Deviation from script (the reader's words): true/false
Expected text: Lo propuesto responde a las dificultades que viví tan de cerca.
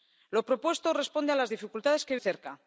true